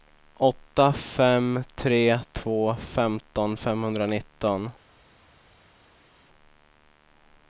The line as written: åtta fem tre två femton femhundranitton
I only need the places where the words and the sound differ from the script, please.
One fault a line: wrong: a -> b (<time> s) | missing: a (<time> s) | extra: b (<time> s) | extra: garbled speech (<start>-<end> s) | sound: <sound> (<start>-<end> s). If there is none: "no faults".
no faults